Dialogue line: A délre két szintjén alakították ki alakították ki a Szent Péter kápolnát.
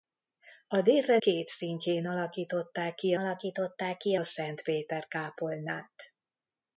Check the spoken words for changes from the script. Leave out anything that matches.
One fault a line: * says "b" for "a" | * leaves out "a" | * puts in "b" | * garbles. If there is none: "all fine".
all fine